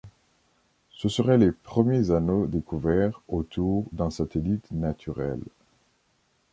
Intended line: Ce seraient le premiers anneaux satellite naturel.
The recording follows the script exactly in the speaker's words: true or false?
false